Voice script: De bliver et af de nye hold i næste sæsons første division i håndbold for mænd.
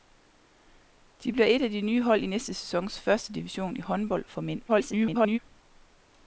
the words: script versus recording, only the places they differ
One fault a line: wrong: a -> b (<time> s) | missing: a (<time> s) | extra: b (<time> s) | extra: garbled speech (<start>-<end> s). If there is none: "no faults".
extra: garbled speech (4.7-5.4 s)